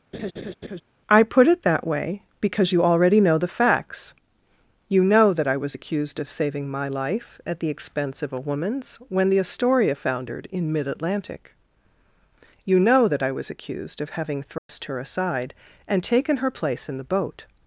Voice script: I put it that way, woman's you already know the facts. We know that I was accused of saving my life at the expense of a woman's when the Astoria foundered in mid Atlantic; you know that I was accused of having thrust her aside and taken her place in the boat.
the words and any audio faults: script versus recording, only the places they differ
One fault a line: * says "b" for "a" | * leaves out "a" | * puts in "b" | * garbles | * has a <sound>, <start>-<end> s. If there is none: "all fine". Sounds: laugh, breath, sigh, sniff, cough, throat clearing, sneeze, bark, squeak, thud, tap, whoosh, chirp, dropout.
* has a laugh, 0.1-0.8 s
* says "because" for "woman's"
* says "You" for "We"
* has a dropout, 14.6-14.7 s